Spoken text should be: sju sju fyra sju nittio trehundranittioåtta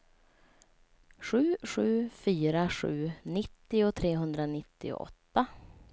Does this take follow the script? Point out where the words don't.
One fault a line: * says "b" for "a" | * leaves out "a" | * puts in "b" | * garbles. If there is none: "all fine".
all fine